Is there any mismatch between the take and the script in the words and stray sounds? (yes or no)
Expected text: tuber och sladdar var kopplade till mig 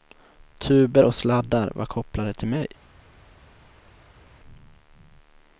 no